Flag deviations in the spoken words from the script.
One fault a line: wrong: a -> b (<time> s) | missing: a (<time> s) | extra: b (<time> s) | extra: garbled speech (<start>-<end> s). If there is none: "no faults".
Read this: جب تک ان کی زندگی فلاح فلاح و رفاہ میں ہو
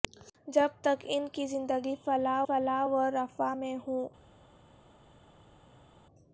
no faults